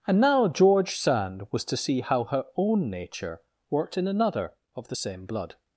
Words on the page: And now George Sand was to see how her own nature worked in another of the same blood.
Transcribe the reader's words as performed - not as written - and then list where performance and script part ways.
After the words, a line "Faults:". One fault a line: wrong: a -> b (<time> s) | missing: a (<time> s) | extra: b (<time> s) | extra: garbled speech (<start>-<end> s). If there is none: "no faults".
And now George Sand was to see how her own nature worked in another of the same blood.
Faults:
no faults